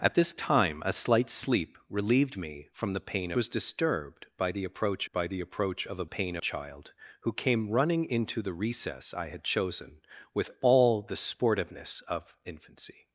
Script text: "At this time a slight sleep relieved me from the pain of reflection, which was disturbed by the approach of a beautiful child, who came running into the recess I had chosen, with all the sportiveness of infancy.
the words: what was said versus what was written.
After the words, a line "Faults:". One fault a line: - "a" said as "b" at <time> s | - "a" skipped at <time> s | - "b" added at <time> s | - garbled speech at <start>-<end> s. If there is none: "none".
"At this time a slight sleep relieved me from the pain was disturbed by the approach by the approach of a pain child, who came running into the recess I had chosen, with all the sportiveness of infancy.
Faults:
- "of reflection which was disturbed" said as "was disturbed by the approach" at 3.4 s
- "beautiful" said as "pain" at 6.0 s